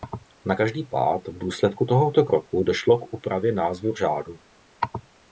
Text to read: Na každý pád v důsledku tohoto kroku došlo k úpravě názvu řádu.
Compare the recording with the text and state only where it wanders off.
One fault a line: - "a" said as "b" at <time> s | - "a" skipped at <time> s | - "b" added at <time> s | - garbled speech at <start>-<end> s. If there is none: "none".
none